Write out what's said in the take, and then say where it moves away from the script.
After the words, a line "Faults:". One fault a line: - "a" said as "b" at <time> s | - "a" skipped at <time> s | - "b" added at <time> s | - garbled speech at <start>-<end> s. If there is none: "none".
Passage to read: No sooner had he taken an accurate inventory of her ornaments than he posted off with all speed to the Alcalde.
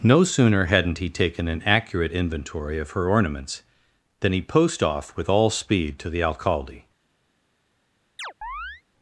No sooner hadn't he taken an accurate inventory of her ornaments than he post off with all speed to the Alcalde.
Faults:
- "had" said as "hadn't" at 0.7 s
- "posted" said as "post" at 4.4 s